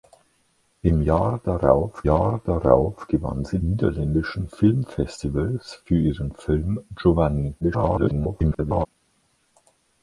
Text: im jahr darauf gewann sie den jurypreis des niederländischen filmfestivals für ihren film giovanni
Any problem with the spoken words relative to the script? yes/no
yes